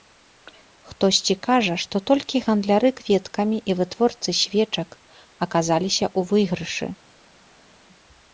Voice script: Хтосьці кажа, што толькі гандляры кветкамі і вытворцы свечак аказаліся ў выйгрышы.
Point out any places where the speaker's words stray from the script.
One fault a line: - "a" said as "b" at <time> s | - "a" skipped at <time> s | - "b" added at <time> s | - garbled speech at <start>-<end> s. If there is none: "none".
none